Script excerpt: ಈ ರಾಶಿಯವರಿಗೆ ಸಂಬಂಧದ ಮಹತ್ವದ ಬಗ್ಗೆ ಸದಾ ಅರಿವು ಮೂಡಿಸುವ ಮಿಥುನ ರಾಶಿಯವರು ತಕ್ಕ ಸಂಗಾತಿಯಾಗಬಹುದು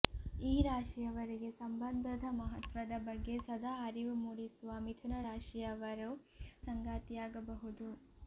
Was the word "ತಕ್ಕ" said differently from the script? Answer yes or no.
yes